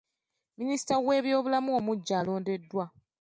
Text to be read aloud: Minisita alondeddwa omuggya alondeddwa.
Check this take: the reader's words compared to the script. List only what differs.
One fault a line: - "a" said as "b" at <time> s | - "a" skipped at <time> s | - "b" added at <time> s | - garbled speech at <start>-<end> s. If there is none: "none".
- "alondeddwa" said as "w'ebyobulamu" at 1.1 s